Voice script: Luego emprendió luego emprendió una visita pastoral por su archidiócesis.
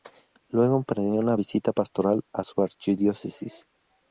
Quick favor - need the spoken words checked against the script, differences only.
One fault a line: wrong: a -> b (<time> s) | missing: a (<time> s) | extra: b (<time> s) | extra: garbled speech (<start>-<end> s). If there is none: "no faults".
missing: luego emprendió (1.2 s)
wrong: por -> a (2.3 s)